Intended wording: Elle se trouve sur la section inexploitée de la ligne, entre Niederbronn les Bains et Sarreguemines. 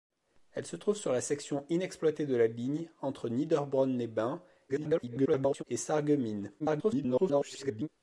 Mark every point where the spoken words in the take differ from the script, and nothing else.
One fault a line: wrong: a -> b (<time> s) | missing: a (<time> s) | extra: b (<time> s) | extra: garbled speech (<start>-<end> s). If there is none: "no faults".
extra: garbled speech (4.7-5.6 s)
extra: garbled speech (6.6-7.9 s)